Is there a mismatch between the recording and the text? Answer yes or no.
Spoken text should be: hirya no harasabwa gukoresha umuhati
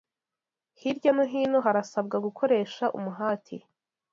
yes